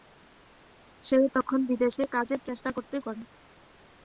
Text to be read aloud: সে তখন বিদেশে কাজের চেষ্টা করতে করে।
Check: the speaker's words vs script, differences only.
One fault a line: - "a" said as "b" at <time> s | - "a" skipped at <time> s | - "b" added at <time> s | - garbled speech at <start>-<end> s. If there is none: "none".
none